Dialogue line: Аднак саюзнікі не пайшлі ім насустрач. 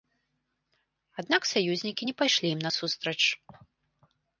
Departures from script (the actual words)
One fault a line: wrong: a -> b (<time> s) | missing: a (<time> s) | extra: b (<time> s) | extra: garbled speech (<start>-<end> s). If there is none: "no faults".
no faults